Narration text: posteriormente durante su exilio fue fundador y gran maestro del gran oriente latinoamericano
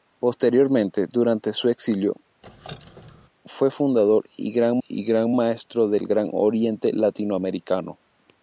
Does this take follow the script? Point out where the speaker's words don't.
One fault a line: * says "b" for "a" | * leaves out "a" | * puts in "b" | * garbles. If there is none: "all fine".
* puts in "y gran"